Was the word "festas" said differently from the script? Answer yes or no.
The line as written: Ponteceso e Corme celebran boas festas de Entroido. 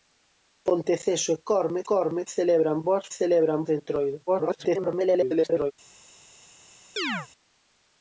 yes